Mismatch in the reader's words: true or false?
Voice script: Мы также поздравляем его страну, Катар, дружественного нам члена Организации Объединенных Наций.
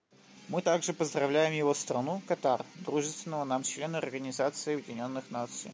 false